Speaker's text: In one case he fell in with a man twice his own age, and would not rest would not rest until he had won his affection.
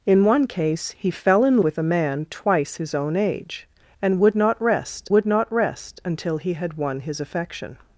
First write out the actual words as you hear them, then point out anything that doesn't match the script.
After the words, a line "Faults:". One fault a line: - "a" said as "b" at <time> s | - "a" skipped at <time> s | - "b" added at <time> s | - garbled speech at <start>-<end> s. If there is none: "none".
In one case he fell in with a man twice his own age, and would not rest would not rest until he had won his affection.
Faults:
none